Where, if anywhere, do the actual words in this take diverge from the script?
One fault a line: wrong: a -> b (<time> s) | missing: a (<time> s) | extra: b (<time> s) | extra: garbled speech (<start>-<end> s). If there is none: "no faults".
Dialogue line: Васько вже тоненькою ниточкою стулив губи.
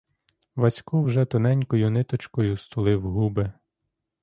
no faults